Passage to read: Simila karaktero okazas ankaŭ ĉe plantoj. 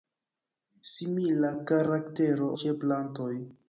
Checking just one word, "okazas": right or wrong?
wrong